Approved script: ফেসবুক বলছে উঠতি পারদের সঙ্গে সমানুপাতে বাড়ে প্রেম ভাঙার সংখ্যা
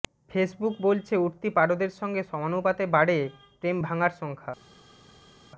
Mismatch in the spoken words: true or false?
false